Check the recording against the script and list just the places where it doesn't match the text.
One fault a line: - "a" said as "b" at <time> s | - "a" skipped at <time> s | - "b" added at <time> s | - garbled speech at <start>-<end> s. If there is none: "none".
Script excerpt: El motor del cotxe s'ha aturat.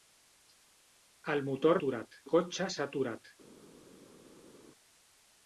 - "del" said as "aturat" at 1.8 s